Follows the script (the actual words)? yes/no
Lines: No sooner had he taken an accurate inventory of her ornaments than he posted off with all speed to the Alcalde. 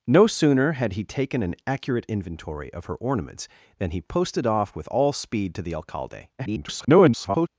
no